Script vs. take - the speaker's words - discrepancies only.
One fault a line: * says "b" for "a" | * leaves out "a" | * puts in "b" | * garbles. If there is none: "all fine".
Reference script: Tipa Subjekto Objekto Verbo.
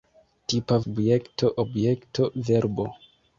all fine